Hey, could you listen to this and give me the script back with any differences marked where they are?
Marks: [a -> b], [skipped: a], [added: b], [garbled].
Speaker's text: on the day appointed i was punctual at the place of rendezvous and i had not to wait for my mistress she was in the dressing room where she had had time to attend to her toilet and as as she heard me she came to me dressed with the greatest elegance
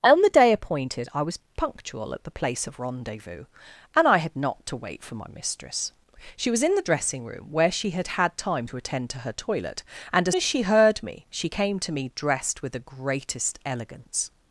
on the day appointed i was punctual at the place of rendezvous and i had not to wait for my mistress she was in the dressing room where she had had time to attend to her toilet and as as she heard me she came to me dressed with the greatest elegance